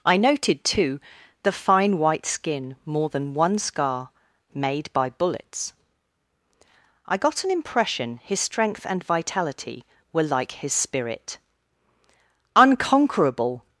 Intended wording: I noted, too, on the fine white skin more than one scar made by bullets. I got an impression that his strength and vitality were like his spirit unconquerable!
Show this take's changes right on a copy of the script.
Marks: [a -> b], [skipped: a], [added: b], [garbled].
I noted, too, [skipped: on] the fine white skin more than one scar made by bullets. I got an impression [skipped: that] his strength and vitality were like his spirit unconquerable!